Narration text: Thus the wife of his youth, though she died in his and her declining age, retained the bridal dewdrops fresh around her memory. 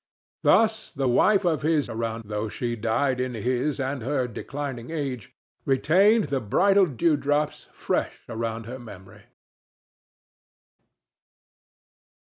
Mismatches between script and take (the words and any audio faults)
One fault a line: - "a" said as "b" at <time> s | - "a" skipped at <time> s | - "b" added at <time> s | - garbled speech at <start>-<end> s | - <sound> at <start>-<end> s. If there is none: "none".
- "youth" said as "around" at 1.9 s